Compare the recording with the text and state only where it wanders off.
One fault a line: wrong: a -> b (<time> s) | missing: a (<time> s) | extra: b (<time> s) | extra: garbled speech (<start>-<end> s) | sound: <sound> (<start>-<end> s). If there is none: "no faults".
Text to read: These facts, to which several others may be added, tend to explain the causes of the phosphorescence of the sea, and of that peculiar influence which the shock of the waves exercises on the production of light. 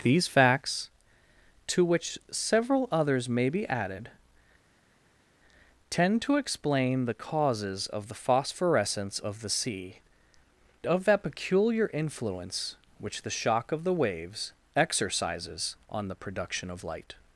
missing: and (9.9 s)